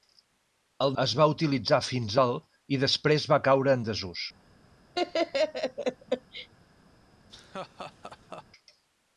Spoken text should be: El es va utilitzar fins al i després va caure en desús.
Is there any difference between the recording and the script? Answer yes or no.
no